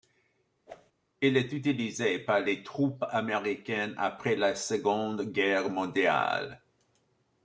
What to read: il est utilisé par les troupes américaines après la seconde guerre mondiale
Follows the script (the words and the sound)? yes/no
no